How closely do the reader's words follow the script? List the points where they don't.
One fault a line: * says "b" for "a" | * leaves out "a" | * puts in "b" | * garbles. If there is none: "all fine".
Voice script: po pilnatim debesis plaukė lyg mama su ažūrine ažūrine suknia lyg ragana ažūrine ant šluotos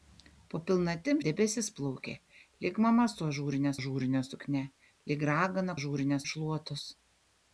all fine